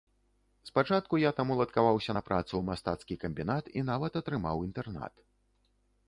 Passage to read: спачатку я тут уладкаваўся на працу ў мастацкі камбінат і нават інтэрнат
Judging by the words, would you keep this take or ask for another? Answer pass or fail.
fail